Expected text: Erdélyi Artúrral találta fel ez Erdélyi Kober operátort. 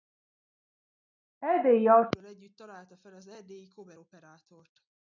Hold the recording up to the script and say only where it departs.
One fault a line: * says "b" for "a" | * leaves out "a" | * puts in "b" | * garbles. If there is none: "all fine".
* puts in "együtt"
* says "az" for "ez"